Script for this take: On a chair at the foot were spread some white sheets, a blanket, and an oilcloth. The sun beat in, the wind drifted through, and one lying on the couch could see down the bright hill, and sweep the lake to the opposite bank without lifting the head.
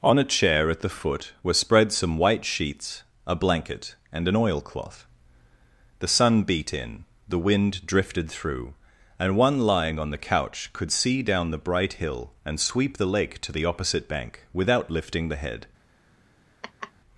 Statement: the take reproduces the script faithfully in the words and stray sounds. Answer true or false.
false